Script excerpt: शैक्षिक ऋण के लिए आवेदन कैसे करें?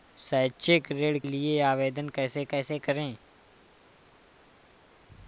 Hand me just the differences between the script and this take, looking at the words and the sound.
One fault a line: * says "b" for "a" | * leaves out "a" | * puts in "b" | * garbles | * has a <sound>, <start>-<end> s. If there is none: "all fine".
* leaves out "के"
* puts in "कैसे"